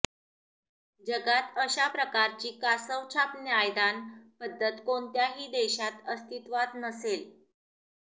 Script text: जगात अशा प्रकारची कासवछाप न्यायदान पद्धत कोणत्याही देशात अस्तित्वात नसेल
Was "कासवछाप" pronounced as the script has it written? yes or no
yes